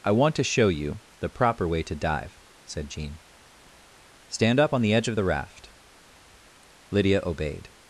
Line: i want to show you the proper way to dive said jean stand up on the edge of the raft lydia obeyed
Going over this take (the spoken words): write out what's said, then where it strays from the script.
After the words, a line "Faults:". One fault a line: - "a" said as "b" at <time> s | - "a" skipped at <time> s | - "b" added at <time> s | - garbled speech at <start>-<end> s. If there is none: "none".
i want to show you the proper way to dive said jean stand up on the edge of the raft lydia obeyed
Faults:
none